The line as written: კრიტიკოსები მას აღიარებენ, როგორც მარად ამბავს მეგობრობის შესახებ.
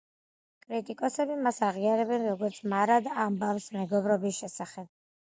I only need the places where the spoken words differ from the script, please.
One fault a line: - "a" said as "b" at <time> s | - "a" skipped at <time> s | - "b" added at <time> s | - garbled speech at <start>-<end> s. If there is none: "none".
none